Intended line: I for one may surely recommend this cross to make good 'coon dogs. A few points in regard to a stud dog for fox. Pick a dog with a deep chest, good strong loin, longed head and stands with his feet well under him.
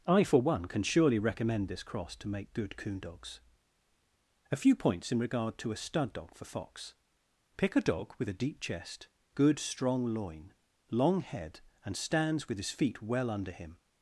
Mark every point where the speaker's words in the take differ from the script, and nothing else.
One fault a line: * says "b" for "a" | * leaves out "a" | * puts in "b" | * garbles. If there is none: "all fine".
* says "can" for "may"
* says "long" for "longed"